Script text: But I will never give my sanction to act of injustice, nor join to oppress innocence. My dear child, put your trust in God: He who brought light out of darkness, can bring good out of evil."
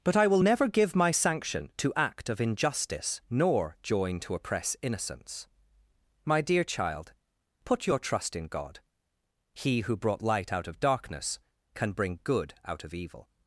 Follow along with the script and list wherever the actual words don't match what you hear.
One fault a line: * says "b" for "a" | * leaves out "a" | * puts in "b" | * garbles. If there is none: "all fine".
all fine